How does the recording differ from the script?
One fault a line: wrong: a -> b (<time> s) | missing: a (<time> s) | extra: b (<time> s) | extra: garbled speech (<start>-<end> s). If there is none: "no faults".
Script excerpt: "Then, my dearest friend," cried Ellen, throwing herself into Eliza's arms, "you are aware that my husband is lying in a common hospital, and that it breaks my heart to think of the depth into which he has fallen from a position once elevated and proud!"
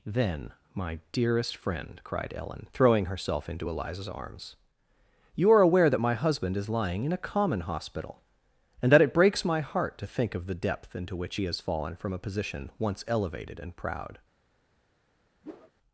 no faults